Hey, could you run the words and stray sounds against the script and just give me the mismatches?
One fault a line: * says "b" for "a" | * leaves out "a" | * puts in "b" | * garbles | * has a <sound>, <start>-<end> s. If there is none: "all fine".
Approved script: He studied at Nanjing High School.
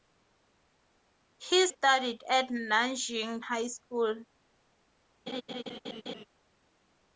* has a laugh, 5.3-6.3 s